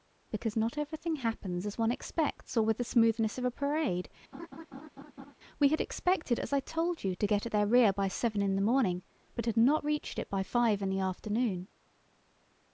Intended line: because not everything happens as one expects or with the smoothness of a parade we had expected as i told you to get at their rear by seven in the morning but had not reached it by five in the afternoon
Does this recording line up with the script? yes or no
yes